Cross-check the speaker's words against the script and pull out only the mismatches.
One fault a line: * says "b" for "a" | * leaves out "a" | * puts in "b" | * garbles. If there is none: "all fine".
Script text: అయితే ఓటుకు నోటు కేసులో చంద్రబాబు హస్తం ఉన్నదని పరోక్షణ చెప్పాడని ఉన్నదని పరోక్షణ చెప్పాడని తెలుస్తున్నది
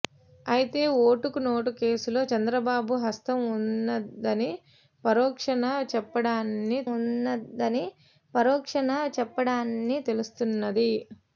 all fine